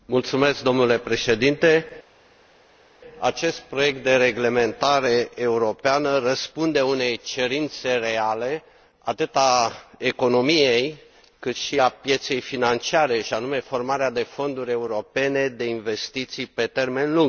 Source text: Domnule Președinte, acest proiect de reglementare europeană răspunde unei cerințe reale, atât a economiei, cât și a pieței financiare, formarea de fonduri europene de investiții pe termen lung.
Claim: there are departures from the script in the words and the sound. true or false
true